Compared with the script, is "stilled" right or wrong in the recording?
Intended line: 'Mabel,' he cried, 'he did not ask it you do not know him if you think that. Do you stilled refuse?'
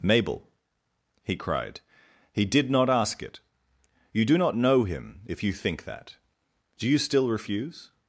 wrong